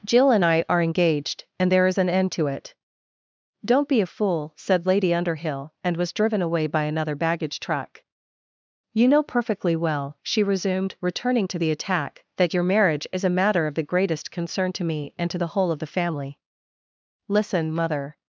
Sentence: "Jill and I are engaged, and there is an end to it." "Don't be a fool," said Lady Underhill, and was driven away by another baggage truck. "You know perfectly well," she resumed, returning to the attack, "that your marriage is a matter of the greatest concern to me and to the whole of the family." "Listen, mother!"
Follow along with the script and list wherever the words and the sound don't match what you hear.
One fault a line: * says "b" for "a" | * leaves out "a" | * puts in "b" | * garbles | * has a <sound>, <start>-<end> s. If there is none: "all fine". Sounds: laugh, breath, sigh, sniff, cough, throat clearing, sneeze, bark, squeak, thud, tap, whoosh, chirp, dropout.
all fine